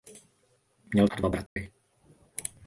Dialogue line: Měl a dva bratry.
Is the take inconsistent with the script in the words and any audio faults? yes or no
yes